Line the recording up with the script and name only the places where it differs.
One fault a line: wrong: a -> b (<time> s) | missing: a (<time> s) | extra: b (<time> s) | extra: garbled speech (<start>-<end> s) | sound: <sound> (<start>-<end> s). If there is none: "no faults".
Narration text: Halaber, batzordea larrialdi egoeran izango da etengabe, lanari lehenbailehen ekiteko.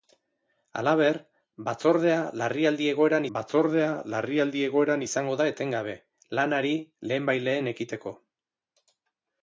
extra: batzordea larrialdi egoeran (3.4 s)